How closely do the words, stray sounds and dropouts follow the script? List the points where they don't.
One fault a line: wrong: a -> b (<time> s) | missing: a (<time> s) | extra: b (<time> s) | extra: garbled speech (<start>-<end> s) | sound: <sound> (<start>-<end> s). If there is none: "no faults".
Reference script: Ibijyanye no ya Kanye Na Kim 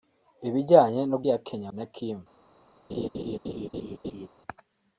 sound: laugh (2.9-4.3 s)